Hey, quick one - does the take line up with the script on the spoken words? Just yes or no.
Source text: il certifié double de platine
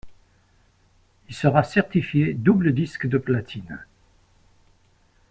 no